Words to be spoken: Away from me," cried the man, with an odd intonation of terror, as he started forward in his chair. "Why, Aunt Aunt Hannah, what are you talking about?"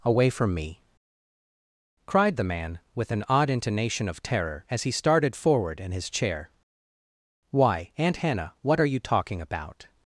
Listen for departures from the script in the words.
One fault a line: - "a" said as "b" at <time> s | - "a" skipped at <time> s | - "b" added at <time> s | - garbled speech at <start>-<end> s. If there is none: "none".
- "Aunt" skipped at 8.2 s